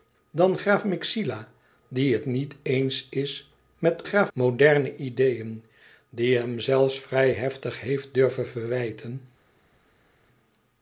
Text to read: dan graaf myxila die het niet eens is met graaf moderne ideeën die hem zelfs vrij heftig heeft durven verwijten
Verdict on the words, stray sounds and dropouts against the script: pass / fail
pass